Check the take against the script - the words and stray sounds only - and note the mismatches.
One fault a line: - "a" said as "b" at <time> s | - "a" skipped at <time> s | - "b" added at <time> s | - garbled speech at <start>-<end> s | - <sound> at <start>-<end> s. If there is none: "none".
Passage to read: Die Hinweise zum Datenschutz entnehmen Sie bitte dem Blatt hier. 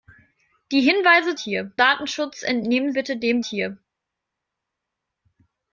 - "zum" said as "hier" at 1.4 s
- "Sie" skipped at 2.9 s
- "Blatt" skipped at 3.4 s